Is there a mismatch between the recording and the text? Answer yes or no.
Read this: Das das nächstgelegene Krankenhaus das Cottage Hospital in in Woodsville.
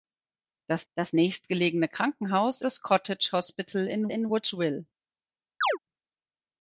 no